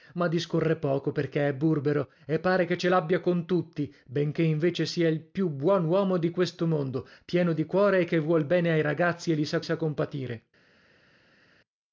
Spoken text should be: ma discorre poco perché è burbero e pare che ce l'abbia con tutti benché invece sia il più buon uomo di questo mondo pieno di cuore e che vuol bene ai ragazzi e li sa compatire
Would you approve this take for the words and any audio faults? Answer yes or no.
no